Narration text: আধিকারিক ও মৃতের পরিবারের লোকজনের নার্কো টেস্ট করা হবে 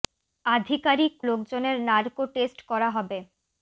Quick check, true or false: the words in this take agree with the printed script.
false